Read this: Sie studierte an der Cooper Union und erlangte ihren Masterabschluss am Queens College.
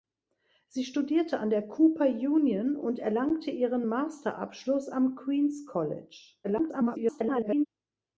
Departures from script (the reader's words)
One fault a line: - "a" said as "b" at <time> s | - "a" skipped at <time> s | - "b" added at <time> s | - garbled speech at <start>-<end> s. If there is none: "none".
- garbled speech at 6.4-7.7 s